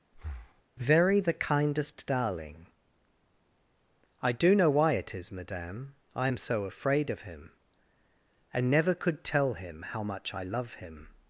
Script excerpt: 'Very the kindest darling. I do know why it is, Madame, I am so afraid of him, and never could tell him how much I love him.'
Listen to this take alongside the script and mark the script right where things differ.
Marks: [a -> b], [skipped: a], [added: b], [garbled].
'Very the kindest darling. I do know why it is, Madame, I am so afraid of him, and never could tell him how much I love him.'